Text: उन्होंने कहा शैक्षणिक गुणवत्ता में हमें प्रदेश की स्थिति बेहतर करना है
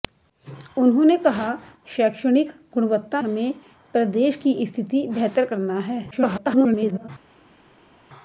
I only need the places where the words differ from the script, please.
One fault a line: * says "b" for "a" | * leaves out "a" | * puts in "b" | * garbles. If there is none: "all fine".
* leaves out "में"
* garbles